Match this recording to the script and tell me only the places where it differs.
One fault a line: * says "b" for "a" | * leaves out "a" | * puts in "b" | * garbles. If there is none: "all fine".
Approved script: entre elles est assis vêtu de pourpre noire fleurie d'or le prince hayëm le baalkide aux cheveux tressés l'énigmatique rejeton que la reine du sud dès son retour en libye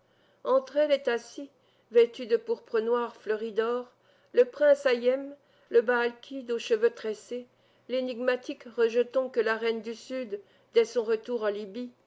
all fine